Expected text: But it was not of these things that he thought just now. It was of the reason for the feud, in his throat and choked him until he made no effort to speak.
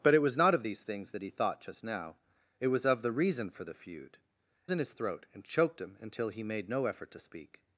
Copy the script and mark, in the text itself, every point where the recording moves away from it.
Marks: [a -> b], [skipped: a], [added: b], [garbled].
But it was not of these things that he thought just now. It was of the reason for the feud, in his throat and choked him until he made no effort to speak.